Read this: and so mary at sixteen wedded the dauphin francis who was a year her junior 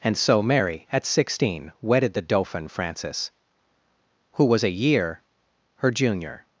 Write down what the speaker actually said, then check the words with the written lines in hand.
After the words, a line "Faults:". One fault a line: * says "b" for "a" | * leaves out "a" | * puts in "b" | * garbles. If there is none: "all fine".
and so mary at sixteen wedded the dauphin francis who was a year her junior
Faults:
all fine